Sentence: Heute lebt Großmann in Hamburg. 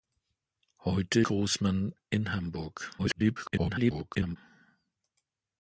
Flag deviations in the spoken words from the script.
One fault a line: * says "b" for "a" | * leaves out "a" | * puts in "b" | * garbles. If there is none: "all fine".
* leaves out "lebt"
* garbles